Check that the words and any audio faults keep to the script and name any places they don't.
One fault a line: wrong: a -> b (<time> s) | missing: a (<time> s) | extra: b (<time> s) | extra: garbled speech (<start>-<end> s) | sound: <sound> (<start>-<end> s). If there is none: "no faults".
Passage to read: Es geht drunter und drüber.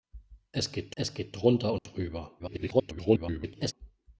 extra: es geht (1.0 s)
sound: dropout (1.8-1.9 s)
extra: garbled speech (2.4-3.7 s)